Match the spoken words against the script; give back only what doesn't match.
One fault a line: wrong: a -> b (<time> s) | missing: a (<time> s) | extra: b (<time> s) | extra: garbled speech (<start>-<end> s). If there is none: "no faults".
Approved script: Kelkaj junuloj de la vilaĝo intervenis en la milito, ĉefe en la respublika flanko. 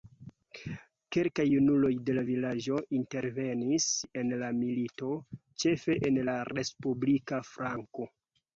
no faults